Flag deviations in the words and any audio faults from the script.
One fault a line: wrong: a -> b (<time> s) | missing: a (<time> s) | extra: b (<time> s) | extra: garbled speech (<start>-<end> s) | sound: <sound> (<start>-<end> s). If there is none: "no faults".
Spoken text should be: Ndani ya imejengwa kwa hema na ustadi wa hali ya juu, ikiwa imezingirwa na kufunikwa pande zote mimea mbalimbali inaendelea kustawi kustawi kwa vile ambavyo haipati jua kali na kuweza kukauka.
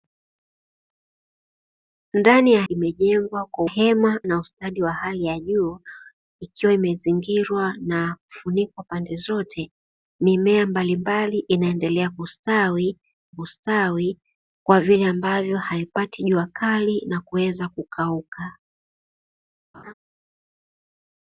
sound: laugh (19.7-19.9 s)